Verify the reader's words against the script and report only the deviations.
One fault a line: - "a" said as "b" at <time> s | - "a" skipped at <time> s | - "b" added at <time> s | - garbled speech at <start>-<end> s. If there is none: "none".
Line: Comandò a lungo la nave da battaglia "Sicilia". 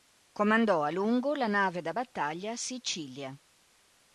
none